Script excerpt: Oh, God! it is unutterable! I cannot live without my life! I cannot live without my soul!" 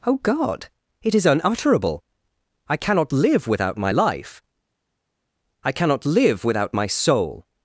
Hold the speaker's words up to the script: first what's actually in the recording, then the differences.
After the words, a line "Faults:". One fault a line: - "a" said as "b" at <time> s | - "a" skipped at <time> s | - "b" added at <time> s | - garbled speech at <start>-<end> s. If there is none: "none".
Oh, God! it is unutterable! I cannot live without my life! I cannot live without my soul!"
Faults:
none